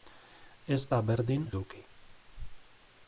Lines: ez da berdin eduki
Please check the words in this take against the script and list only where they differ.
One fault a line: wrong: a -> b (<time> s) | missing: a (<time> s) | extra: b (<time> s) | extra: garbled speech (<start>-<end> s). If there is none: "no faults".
no faults